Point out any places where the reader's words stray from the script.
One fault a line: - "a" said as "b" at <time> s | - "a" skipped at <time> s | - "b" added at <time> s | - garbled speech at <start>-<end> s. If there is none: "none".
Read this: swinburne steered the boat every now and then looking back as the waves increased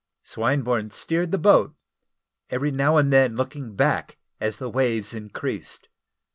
none